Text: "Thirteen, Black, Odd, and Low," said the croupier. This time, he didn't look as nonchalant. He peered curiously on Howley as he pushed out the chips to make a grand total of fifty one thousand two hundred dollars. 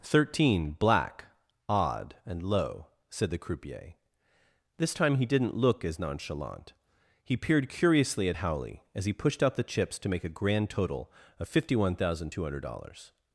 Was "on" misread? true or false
true